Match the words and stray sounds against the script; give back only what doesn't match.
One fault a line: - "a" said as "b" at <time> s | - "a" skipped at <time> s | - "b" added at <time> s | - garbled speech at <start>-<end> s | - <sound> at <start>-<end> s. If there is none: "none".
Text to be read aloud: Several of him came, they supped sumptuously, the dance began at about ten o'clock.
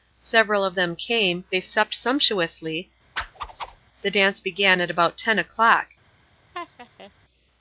- "him" said as "them" at 0.7 s
- whoosh at 3.2-3.8 s
- laugh at 6.5-7.1 s